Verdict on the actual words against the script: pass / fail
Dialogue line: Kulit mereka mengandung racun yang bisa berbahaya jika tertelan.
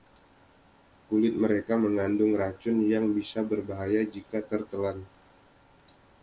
pass